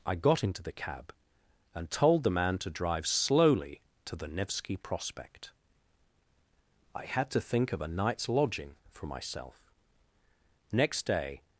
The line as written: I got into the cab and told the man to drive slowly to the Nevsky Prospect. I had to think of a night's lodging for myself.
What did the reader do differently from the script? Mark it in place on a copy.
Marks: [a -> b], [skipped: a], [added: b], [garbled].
I got into the cab and told the man to drive slowly to the Nevsky Prospect. I had to think of a night's lodging for myself. [added: Next day]